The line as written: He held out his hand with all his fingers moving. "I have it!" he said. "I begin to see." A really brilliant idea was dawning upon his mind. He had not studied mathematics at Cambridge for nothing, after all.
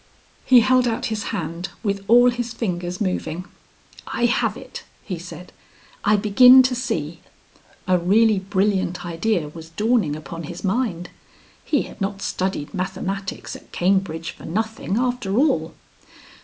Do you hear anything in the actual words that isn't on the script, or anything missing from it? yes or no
no